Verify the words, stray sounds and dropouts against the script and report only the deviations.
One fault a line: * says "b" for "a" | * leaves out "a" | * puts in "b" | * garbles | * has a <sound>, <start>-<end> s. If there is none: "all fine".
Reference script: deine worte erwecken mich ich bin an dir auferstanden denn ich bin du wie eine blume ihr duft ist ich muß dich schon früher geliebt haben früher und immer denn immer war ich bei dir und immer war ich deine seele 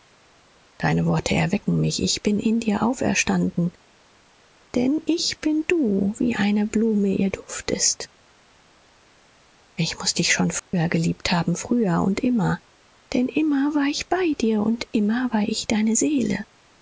* says "in" for "an"
* has a dropout, 10.6-10.7 s